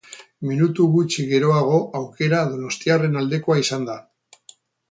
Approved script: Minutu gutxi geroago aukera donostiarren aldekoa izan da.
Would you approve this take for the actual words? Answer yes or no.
yes